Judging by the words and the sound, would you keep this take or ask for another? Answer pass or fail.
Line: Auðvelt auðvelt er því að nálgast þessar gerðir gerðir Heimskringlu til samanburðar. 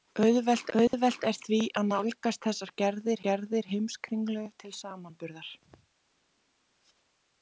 fail